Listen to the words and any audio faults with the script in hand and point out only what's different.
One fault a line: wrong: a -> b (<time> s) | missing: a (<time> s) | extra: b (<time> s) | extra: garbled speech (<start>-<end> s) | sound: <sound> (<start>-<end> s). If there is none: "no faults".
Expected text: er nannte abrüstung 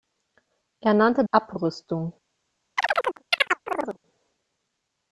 sound: chirp (2.8-4.0 s)